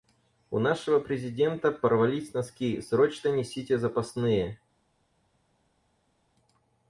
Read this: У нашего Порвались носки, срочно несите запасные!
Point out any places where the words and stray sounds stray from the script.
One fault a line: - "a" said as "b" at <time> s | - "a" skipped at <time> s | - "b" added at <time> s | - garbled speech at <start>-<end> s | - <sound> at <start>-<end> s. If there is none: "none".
- "Президента" added at 1.0 s